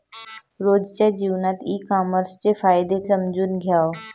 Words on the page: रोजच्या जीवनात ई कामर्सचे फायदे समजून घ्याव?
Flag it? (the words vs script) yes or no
no